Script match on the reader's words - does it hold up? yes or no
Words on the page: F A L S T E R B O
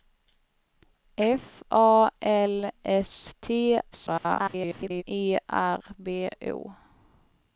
no